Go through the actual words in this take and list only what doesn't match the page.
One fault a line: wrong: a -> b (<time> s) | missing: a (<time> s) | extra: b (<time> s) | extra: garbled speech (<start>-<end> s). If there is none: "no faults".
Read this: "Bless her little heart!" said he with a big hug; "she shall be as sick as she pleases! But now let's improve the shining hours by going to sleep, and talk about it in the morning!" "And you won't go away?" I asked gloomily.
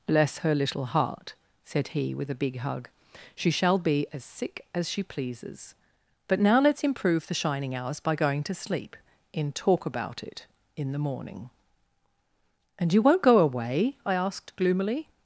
wrong: and -> in (9.3 s)